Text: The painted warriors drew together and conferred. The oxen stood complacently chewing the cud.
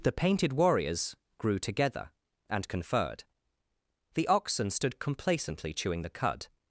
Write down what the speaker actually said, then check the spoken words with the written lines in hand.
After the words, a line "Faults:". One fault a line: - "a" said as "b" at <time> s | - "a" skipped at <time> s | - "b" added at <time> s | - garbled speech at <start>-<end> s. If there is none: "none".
The painted warriors grew together and conferred. The oxen stood complacently chewing the cud.
Faults:
- "drew" said as "grew" at 1.4 s